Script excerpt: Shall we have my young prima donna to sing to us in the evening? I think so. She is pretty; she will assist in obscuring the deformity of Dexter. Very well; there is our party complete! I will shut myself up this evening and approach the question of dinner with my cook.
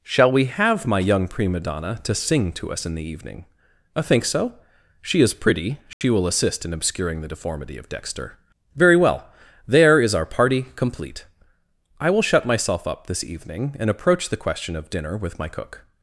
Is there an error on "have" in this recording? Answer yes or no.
no